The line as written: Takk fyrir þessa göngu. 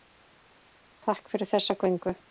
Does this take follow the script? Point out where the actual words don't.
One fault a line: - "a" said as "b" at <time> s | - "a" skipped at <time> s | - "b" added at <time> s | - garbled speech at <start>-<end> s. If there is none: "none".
none